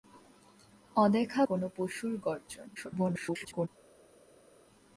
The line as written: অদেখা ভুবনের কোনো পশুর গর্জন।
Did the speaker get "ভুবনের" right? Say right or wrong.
wrong